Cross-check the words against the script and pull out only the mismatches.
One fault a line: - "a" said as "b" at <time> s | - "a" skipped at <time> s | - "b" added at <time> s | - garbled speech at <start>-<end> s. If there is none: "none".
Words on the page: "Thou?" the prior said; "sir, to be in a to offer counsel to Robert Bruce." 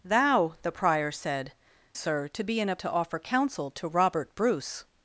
none